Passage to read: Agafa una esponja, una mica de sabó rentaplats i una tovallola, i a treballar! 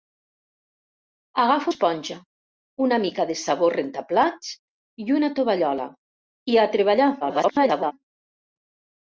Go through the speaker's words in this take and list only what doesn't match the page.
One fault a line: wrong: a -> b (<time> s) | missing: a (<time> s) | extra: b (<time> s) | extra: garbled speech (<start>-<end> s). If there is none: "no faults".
missing: una (1.7 s)
extra: garbled speech (7.2-7.9 s)